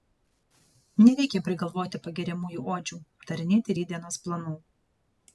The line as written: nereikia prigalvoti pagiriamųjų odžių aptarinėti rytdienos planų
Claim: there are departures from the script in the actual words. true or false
false